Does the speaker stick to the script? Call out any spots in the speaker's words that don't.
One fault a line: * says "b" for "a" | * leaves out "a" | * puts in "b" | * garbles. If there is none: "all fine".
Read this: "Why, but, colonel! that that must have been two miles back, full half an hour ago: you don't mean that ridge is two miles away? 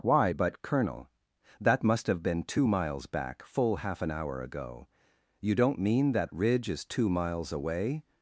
* leaves out "that"